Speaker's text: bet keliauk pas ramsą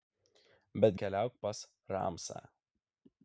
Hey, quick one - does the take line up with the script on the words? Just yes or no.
yes